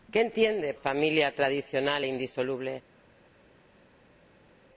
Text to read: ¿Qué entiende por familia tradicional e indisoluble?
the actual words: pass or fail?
fail